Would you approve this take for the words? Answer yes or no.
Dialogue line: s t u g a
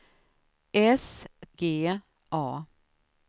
no